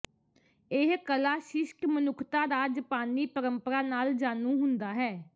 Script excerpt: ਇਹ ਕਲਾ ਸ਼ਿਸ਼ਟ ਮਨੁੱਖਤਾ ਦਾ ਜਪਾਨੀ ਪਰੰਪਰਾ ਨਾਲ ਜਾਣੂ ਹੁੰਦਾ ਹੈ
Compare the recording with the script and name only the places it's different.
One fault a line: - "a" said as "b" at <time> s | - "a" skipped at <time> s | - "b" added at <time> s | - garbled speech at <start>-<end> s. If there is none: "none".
none